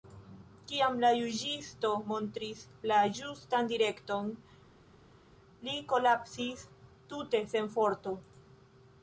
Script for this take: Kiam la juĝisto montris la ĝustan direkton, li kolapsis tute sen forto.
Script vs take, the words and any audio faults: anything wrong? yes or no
no